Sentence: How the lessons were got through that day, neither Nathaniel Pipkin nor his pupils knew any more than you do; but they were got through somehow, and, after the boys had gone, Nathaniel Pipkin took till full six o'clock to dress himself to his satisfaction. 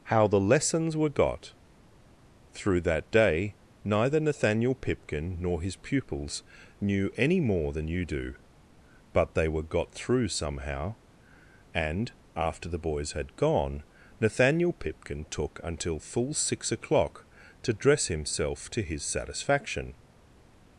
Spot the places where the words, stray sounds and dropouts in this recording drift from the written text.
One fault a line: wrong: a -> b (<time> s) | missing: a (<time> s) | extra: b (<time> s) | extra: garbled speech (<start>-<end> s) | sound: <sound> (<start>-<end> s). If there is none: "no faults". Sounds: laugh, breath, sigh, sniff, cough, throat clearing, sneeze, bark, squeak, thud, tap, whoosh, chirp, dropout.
wrong: till -> until (15.6 s)